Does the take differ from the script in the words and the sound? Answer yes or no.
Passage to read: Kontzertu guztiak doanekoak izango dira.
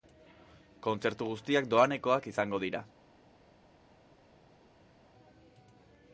no